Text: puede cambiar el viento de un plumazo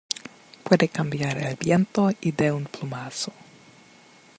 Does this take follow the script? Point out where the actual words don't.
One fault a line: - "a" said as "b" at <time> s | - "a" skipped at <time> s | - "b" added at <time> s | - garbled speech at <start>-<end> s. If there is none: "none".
- "y" added at 2.2 s